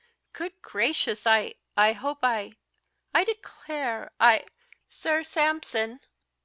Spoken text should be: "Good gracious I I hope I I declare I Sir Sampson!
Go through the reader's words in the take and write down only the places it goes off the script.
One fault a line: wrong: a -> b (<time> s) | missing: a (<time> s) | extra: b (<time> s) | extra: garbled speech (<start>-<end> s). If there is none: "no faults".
no faults